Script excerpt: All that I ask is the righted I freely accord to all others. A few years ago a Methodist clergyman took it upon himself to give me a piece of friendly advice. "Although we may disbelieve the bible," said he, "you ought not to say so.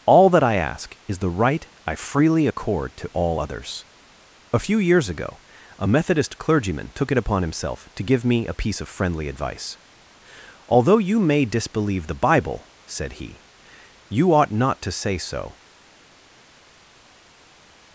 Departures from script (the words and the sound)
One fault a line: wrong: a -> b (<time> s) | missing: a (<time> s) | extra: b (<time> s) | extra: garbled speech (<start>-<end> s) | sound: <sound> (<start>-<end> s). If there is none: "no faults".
wrong: righted -> right (1.3 s)
wrong: we -> you (11.0 s)